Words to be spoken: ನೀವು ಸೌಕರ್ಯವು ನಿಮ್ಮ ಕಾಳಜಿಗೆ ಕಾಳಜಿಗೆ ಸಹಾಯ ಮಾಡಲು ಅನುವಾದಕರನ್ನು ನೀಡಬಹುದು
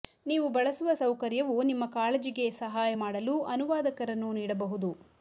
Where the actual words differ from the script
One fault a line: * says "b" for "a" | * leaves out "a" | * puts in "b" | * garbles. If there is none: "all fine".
* puts in "ಬಳಸುವ"
* leaves out "ಕಾಳಜಿಗೆ"